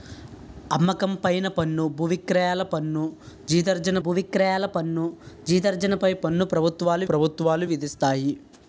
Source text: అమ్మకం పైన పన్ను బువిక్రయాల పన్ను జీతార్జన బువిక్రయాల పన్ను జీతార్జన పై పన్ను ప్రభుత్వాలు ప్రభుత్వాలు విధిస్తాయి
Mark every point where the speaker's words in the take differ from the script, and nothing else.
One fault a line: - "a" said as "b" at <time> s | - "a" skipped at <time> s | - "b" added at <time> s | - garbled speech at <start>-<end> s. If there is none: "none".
none